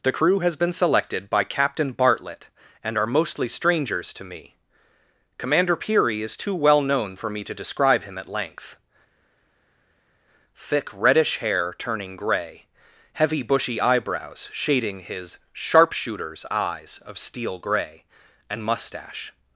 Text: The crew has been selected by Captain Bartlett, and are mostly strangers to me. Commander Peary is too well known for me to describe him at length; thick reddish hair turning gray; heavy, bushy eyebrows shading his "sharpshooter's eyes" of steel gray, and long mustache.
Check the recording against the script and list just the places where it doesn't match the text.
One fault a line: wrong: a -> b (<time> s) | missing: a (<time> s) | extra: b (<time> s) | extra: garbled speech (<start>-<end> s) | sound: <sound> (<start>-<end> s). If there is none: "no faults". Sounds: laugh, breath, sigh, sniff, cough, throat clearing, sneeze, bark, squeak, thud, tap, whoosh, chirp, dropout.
missing: long (18.6 s)